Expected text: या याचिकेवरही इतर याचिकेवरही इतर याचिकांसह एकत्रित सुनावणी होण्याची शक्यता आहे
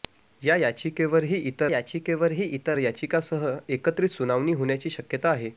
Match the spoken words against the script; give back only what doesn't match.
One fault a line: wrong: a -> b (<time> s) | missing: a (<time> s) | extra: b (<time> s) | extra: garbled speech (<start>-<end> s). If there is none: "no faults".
no faults